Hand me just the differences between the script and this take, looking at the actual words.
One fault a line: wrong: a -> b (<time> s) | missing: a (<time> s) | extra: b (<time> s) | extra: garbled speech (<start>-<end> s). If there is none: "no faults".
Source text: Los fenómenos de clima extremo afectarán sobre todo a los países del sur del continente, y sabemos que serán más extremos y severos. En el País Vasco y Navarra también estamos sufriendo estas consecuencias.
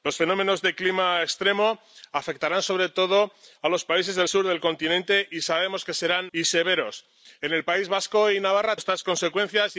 missing: más extremos (6.3 s)
missing: también estamos sufriendo (8.8 s)